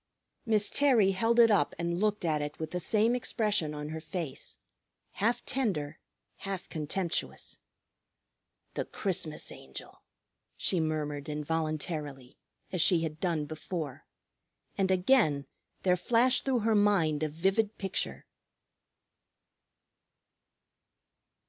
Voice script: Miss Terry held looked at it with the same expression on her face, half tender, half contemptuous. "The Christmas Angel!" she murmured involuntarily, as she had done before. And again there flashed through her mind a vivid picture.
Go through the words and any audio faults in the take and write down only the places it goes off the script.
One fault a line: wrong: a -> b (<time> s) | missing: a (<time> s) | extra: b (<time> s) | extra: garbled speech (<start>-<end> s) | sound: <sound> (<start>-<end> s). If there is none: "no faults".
extra: it up and (1.4 s)